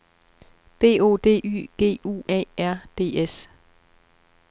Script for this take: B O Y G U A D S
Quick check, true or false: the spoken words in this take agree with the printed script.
false